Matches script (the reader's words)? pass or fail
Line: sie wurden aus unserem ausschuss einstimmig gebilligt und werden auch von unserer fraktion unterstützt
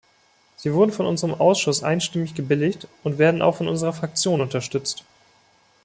fail